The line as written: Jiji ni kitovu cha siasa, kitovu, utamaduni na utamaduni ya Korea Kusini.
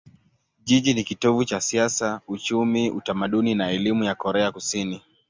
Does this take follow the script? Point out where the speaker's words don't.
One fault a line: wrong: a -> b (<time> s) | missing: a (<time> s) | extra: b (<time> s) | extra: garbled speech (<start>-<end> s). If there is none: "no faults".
wrong: kitovu -> uchumi (2.3 s)
wrong: utamaduni -> elimu (3.7 s)